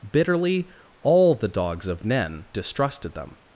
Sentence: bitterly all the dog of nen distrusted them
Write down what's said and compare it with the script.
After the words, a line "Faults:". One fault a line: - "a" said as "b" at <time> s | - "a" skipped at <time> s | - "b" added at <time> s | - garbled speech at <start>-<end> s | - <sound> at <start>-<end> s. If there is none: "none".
bitterly all the dogs of nen distrusted them
Faults:
- "dog" said as "dogs" at 1.5 s